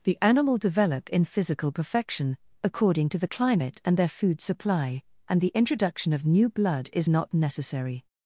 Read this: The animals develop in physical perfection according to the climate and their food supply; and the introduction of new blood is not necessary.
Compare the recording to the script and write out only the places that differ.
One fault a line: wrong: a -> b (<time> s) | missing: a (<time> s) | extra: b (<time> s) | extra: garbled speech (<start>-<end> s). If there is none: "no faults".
wrong: animals -> animal (0.2 s)